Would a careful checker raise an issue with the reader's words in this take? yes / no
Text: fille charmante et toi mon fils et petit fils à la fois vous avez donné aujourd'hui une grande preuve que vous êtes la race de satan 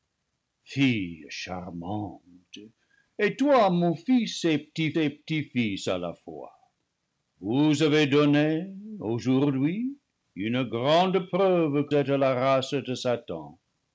yes